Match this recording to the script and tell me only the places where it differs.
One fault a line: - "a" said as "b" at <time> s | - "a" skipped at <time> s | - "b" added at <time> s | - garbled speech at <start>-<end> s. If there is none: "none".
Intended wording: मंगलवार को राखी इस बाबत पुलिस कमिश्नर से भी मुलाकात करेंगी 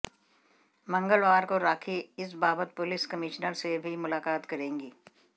none